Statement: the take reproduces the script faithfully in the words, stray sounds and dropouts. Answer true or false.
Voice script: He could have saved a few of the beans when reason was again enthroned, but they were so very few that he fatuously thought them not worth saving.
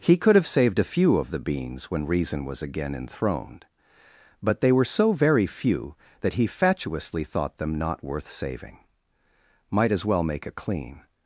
false